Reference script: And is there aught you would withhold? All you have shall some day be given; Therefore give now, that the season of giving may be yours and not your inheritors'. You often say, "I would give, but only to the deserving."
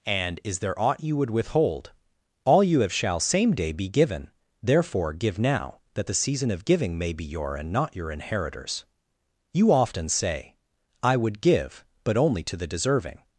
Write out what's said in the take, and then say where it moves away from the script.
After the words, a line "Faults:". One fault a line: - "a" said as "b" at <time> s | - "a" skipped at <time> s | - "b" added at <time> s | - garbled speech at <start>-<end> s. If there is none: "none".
And is there aught you would withhold? All you have shall same day be given; Therefore give now, that the season of giving may be your and not your inheritors'. You often say, "I would give, but only to the deserving."
Faults:
- "some" said as "same" at 3.2 s
- "yours" said as "your" at 7.2 s